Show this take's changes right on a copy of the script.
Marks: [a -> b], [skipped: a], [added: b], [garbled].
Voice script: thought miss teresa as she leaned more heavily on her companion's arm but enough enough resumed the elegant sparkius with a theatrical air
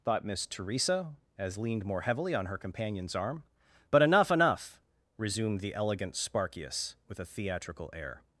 thought miss teresa as [skipped: she] leaned more heavily on her companion's arm but enough enough resumed the elegant sparkius with a theatrical air